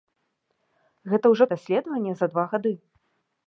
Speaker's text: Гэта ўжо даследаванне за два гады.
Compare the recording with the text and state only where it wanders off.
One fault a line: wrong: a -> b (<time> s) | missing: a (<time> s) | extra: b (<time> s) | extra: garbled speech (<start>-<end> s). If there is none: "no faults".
no faults